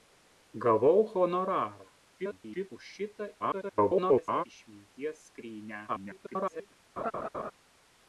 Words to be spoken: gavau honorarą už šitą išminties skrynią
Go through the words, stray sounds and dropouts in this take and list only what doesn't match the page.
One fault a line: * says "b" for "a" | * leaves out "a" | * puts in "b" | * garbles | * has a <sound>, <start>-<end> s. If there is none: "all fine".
* garbles
* garbles
* garbles
* has a laugh, 7.0-7.5 s